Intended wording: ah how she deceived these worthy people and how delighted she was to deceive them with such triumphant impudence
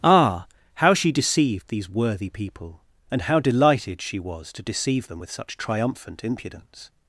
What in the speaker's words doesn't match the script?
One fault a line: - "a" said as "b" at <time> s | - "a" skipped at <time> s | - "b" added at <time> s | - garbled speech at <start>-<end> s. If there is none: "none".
none